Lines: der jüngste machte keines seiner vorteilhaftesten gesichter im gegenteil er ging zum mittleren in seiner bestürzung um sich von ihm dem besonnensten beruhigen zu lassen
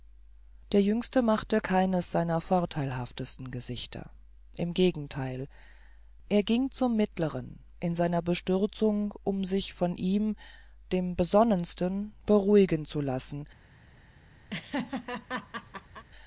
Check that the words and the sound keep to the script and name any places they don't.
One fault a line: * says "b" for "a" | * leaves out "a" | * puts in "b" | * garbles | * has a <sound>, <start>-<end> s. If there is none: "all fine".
* has a laugh, 14.5-16.0 s